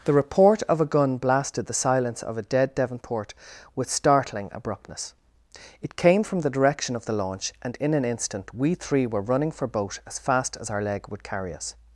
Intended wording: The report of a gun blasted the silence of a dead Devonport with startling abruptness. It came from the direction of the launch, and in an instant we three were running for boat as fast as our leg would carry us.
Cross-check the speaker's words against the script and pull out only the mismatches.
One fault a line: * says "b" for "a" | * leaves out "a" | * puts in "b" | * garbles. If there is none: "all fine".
all fine